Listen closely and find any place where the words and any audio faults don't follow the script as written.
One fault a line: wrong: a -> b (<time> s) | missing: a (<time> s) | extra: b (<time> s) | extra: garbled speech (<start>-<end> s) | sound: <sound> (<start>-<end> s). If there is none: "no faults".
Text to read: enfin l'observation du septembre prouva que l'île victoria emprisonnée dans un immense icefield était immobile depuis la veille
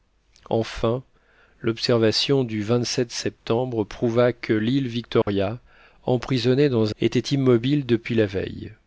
sound: dropout (5.2-5.3 s)
missing: un immense icefield (7.0 s)